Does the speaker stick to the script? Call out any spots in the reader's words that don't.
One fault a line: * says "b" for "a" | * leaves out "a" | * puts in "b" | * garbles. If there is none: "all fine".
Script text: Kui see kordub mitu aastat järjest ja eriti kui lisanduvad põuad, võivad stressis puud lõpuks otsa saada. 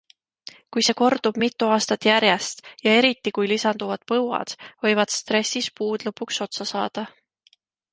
all fine